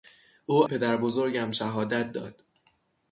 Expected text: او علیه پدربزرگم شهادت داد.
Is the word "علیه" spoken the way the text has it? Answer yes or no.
no